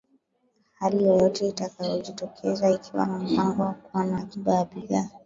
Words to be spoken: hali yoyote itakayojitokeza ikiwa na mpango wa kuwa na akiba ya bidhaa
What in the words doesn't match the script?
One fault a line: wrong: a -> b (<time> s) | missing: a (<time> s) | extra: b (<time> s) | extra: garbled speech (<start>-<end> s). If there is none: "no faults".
no faults